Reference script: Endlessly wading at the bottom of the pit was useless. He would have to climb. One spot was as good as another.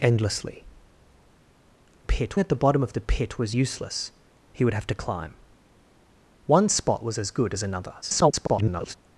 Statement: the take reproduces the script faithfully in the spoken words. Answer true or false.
false